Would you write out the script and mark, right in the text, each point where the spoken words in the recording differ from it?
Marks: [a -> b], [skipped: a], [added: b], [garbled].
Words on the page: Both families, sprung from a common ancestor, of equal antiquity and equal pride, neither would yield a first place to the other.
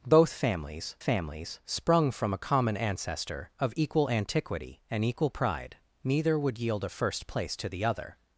Both families, [added: families] sprung from a common ancestor, of equal antiquity and equal pride, neither would yield a first place to the other.